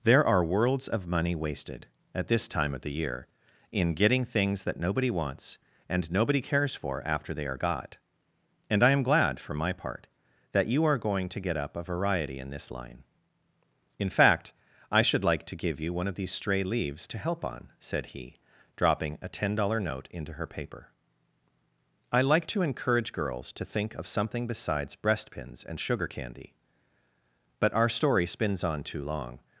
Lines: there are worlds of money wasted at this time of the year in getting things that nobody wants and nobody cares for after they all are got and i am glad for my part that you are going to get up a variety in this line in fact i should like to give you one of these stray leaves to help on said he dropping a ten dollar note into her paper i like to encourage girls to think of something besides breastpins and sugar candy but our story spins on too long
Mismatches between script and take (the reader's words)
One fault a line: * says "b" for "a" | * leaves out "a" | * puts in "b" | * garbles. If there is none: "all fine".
* leaves out "all"